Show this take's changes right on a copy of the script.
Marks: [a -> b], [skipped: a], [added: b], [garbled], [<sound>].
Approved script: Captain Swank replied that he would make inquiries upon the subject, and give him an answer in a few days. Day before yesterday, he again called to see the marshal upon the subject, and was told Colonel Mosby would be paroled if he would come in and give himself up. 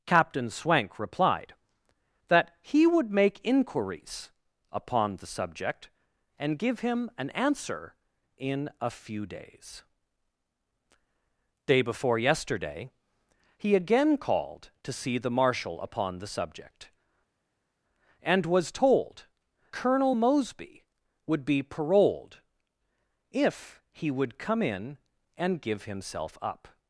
Captain Swank replied that he would make inquiries upon the subject, and give him an answer in a few days. Day before yesterday, he again called to see the marshal upon the subject, and was told Colonel Mosby would be paroled if he would come in and give himself up.